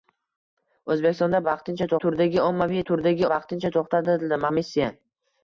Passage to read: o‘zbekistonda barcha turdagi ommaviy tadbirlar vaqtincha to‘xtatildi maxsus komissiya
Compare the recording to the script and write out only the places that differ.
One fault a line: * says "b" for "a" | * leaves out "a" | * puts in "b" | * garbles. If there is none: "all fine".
* says "vaqtincha" for "barcha"
* says "turdagi" for "tadbirlar"
* leaves out "maxsus"